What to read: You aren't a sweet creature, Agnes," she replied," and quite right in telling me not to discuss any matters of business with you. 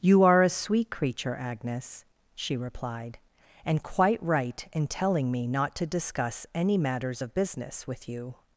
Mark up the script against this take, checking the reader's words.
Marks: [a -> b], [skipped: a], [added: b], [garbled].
You [aren't -> are] a sweet creature, Agnes," she replied," and quite right in telling me not to discuss any matters of business with you.